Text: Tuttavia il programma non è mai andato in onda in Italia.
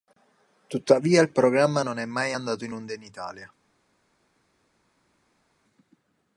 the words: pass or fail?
pass